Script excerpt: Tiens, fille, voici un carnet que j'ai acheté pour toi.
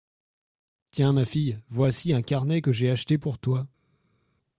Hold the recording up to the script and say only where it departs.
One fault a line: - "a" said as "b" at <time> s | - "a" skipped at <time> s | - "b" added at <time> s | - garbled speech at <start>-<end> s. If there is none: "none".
- "ma" added at 1.1 s